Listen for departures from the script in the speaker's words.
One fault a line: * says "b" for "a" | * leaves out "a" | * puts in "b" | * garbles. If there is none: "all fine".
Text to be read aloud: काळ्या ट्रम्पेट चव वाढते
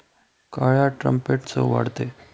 all fine